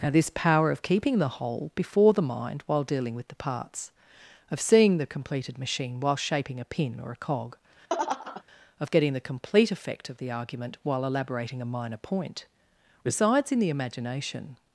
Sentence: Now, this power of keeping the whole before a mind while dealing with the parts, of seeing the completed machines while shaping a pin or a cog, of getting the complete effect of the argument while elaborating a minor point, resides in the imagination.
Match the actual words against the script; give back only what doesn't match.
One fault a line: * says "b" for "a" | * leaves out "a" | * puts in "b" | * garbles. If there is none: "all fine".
* says "the" for "a"
* says "machine" for "machines"